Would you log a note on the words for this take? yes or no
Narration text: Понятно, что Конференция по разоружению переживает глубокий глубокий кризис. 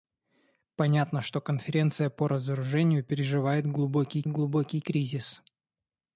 no